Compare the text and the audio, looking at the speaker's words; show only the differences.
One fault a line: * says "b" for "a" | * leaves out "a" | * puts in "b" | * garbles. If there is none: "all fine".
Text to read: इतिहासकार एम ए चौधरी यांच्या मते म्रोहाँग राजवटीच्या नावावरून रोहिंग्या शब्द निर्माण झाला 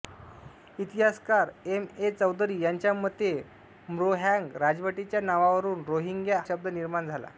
all fine